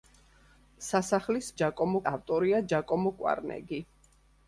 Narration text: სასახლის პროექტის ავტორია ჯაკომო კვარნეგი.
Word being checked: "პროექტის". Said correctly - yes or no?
no